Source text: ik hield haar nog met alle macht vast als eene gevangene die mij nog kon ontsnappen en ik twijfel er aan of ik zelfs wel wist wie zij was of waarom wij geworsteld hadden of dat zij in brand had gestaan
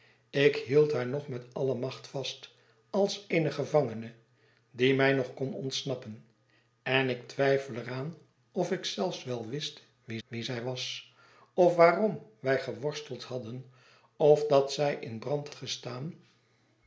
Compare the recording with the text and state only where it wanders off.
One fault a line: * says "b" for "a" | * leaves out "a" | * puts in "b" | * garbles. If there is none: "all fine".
* puts in "wie"
* leaves out "had"